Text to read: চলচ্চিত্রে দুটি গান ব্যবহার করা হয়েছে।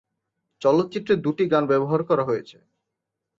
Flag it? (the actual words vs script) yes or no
no